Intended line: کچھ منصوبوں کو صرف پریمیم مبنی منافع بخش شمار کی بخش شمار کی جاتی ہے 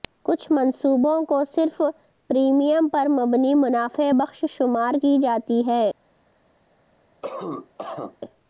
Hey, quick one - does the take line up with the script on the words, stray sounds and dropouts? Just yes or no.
no